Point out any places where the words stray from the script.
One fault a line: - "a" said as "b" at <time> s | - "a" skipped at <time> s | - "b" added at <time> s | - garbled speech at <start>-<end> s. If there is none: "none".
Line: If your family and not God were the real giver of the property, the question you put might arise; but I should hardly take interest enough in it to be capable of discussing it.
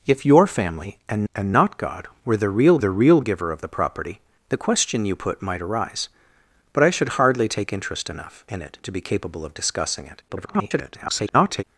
- "and" added at 1.3 s
- "the real" added at 2.8 s
- garbled speech at 10.3-11.6 s